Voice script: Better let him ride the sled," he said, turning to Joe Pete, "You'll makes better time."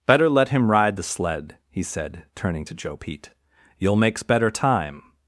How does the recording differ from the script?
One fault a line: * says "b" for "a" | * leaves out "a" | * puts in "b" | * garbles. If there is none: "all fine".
all fine